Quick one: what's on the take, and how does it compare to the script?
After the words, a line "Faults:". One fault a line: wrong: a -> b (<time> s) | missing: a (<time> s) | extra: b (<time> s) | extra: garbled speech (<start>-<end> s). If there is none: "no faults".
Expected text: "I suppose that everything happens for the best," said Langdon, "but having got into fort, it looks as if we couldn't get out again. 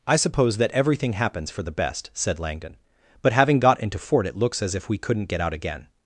"I suppose that everything happens for the best," said Langdon, "but having got into fort, it looks as if we couldn't get out again.
Faults:
no faults